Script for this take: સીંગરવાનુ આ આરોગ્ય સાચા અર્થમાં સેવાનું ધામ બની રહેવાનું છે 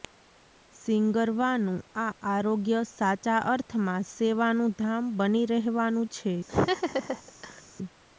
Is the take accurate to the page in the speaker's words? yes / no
yes